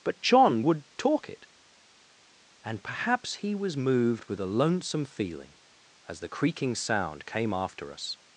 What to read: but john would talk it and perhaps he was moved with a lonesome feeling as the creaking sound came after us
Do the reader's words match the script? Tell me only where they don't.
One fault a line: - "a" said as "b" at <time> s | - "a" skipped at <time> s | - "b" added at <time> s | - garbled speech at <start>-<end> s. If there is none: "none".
none